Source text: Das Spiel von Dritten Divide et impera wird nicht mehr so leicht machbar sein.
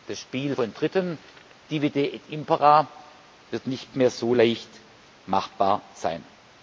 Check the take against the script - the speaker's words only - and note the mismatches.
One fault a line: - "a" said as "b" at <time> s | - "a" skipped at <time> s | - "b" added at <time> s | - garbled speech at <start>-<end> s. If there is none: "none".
none